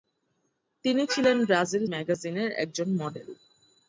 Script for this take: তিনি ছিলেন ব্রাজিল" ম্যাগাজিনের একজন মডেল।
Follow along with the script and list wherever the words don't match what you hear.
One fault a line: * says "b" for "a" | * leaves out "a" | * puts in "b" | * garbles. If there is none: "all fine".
all fine